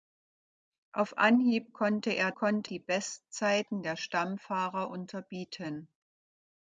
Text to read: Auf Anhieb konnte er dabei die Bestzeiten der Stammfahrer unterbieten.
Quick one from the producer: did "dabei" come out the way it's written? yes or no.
no